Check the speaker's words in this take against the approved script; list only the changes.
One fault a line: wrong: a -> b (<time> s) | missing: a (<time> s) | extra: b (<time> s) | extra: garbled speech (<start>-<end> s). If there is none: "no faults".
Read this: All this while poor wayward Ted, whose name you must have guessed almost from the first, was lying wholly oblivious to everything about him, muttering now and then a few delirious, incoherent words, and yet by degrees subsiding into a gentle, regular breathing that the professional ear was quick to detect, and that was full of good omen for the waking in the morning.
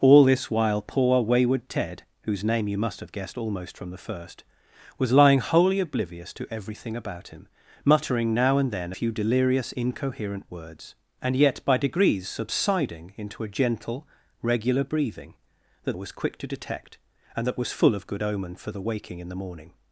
missing: a (8.9 s)
missing: the professional ear (15.9 s)